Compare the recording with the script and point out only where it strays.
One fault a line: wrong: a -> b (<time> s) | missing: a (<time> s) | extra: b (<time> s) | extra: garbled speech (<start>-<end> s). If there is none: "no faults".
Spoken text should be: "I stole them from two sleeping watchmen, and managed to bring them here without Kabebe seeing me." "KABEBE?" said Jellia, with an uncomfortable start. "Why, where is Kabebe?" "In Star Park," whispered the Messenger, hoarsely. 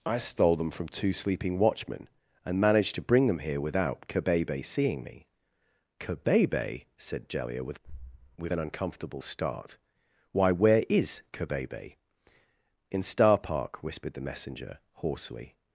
extra: with (8.4 s)